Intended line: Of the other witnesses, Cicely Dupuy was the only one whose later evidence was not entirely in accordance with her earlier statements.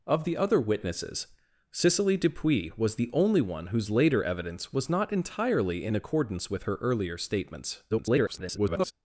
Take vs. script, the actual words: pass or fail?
fail